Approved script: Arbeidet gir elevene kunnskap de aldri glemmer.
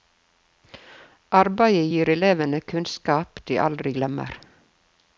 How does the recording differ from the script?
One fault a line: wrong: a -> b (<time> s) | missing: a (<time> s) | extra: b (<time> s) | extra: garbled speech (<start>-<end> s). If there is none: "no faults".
no faults